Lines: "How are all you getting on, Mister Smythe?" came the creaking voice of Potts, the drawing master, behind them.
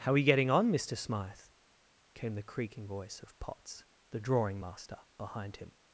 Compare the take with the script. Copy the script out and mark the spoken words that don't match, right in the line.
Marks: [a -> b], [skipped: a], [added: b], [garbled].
"How are [skipped: all] you getting on, Mister Smythe?" came the creaking voice of Potts, the drawing master, behind [them. -> him]